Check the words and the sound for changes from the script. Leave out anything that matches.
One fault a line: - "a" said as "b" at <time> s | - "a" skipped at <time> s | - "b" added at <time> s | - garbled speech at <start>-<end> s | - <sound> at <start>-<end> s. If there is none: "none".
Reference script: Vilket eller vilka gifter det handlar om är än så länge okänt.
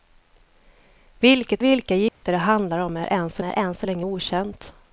- "eller" skipped at 1.6 s
- dropout at 2.1-2.2 s
- "är än så" added at 3.4 s